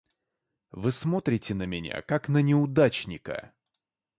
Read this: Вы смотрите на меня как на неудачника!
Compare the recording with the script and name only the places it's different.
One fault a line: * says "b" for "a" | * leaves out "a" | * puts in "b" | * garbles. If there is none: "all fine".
all fine